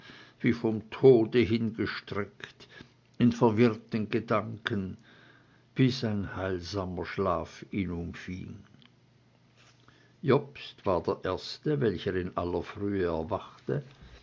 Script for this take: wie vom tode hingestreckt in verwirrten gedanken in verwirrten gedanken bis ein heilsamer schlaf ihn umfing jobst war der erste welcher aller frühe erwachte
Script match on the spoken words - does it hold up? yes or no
no